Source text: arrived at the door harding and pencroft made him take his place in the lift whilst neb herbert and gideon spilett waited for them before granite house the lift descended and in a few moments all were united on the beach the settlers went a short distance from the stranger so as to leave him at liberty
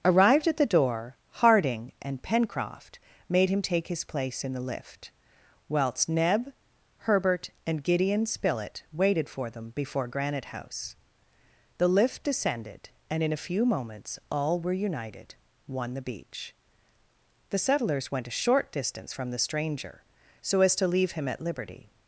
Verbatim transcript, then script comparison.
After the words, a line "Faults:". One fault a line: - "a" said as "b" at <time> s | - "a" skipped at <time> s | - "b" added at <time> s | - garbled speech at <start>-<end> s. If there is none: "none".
arrived at the door harding and pencroft made him take his place in the lift whilst neb herbert and gideon spilett waited for them before granite house the lift descended and in a few moments all were united one the beach the settlers went a short distance from the stranger so as to leave him at liberty
Faults:
- "on" said as "one" at 15.7 s